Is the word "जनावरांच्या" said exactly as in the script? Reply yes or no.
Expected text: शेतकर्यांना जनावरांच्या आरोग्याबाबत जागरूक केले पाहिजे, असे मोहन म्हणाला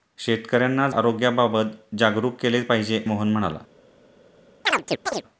no